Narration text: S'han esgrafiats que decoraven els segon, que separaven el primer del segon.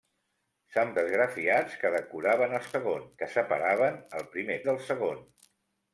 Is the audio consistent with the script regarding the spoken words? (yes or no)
yes